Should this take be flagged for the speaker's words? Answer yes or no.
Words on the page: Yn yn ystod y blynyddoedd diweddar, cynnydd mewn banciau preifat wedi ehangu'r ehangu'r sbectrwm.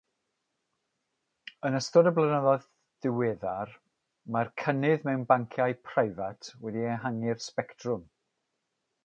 yes